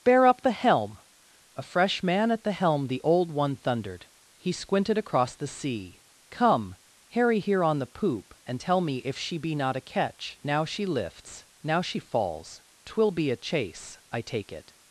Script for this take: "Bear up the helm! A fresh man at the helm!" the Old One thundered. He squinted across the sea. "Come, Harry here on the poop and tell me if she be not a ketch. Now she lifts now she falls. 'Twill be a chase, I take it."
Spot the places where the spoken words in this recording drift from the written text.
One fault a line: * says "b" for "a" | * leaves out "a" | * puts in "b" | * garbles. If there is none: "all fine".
all fine